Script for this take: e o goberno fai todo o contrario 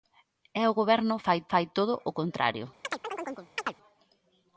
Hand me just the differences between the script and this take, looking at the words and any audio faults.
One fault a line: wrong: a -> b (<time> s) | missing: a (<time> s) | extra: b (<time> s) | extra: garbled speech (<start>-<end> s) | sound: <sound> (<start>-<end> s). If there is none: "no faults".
extra: fai (1.5 s)
sound: chirp (2.8-3.7 s)